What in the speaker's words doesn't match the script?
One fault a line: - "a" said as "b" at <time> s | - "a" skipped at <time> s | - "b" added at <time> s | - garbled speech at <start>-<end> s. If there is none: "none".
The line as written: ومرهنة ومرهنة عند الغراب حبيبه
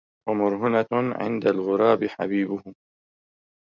- "ومرهنة" skipped at 0.9 s